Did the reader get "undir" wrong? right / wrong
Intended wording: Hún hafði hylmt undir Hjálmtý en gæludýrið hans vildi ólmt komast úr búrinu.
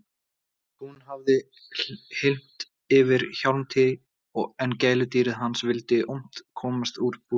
wrong